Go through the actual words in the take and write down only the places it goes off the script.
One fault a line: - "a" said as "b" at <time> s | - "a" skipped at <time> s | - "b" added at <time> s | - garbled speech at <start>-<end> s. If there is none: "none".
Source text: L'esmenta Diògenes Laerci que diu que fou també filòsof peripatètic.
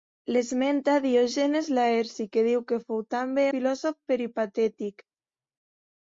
none